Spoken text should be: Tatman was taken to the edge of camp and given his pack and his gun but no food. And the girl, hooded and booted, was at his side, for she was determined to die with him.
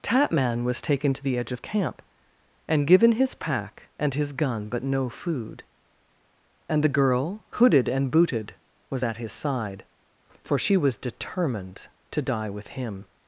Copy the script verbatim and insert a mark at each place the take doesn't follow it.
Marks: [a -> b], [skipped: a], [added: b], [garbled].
Tatman was taken to the edge of camp and given his pack and his gun but no food. And the girl, hooded and booted, was at his side, for she was determined to die with him.